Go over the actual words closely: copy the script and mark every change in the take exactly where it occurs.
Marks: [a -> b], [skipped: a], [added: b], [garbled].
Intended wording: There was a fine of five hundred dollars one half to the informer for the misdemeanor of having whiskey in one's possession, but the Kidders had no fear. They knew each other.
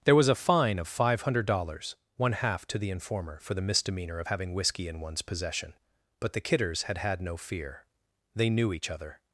There was a fine of five hundred dollars one half to the informer for the misdemeanor of having whiskey in one's possession, but the Kidders had [added: had] no fear. They knew each other.